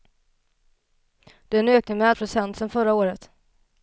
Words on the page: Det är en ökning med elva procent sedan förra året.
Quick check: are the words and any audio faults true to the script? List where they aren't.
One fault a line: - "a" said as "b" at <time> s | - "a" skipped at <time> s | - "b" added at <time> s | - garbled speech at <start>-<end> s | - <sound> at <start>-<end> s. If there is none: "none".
- "elva" skipped at 2.1 s